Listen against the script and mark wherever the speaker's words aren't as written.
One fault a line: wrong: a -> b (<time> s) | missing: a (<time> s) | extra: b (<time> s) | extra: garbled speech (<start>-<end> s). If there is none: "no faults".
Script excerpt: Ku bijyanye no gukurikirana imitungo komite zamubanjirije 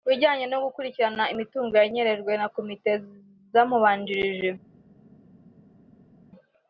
extra: yanyerejwe na (1.8 s)